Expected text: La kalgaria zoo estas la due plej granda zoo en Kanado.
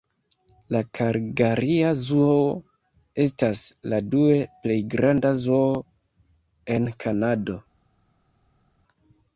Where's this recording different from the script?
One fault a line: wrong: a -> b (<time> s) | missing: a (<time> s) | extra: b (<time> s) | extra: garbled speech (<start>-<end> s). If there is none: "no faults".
no faults